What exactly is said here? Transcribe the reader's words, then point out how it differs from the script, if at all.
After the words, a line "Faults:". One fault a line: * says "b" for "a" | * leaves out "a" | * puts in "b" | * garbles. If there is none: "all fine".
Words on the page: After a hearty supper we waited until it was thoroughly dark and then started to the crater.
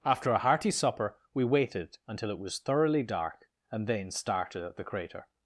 After a hearty supper we waited until it was thoroughly dark and then started at the crater.
Faults:
* says "at" for "to"